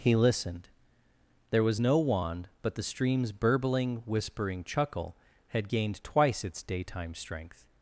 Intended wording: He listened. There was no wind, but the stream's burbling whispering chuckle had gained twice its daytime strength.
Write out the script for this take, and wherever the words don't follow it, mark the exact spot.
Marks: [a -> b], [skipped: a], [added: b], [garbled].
He listened. There was no [wind, -> wand] but the stream's burbling whispering chuckle had gained twice its daytime strength.